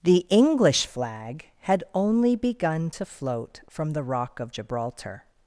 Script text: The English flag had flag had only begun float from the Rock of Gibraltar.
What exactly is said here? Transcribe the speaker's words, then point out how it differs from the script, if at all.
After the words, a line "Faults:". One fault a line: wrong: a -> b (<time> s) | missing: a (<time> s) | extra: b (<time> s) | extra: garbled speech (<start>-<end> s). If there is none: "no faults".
The English flag had only begun to float from the Rock of Gibraltar.
Faults:
missing: flag had (1.8 s)
extra: to (2.9 s)